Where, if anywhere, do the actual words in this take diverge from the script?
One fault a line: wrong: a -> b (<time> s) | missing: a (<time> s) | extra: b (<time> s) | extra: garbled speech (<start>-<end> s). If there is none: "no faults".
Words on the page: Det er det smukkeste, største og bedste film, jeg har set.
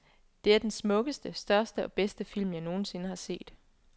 wrong: det -> den (0.6 s)
extra: nogen sinde (2.6 s)